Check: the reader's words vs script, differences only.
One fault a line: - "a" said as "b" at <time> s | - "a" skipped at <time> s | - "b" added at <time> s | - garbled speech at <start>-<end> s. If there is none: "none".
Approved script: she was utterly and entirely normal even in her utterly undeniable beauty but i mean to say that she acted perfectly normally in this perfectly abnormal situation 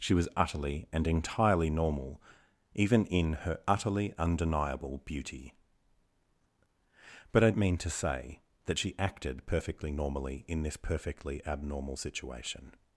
none